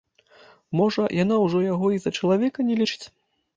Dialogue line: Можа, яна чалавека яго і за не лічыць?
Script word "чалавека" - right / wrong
wrong